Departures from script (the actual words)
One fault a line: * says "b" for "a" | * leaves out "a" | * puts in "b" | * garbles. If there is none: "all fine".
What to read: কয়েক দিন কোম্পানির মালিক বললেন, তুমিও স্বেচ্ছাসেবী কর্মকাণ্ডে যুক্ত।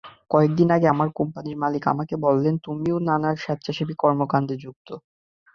* puts in "আগে আমার"
* puts in "আমাকে"
* puts in "নানা"